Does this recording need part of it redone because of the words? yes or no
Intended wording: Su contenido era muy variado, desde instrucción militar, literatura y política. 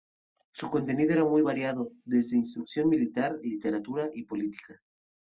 no